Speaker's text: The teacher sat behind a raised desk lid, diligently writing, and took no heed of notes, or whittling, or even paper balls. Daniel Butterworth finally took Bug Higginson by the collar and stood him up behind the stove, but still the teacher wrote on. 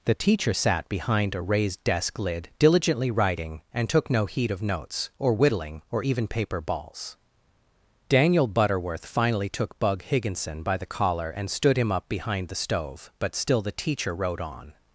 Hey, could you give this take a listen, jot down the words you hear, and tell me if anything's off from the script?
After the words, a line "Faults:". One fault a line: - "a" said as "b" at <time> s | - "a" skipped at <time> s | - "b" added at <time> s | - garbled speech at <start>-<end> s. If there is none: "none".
The teacher sat behind a raised desk lid, diligently writing, and took no heed of notes, or whittling, or even paper balls. Daniel Butterworth finally took Bug Higginson by the collar and stood him up behind the stove, but still the teacher wrote on.
Faults:
none